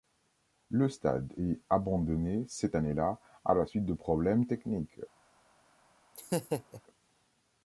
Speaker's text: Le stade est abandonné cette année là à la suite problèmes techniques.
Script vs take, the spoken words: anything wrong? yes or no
yes